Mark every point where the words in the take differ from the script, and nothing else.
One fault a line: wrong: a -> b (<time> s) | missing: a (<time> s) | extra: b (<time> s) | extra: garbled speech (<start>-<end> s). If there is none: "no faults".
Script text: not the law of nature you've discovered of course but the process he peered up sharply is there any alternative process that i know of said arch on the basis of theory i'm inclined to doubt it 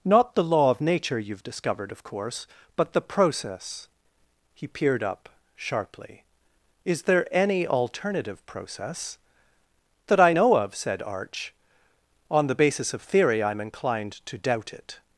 no faults